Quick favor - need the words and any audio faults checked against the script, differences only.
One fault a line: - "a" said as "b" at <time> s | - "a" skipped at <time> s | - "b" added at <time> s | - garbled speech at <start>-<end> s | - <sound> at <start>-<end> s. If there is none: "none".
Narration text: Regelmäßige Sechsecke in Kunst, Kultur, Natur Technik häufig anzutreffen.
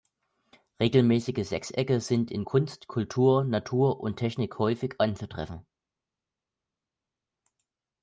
- "sind" added at 2.0 s
- "und" added at 4.0 s